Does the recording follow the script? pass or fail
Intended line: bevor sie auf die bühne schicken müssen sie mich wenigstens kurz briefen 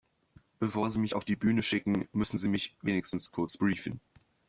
fail